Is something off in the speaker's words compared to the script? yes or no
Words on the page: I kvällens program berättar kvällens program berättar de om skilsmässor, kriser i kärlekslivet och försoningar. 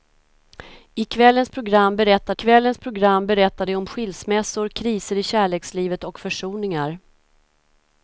no